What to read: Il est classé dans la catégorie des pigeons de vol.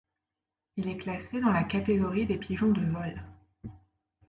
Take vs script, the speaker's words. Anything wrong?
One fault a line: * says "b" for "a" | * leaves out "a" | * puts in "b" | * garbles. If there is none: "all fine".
all fine